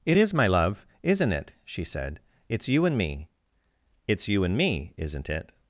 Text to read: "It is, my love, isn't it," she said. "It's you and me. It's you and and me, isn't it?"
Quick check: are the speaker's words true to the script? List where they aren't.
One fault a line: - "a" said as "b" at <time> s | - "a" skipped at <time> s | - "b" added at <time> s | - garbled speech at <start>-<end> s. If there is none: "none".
- "and" skipped at 4.6 s